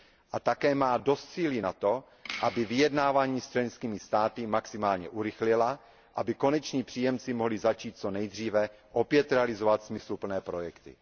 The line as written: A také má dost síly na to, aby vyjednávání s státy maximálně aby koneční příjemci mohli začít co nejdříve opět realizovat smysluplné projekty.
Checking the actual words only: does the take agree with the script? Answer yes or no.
no